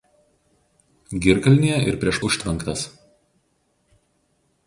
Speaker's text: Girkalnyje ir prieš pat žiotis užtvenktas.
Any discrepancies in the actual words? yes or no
yes